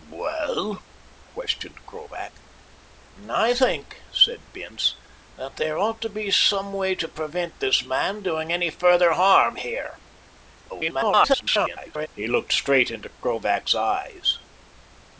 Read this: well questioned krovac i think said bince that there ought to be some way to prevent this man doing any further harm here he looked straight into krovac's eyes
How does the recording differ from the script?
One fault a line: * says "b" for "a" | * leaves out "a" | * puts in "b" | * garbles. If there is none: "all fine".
* garbles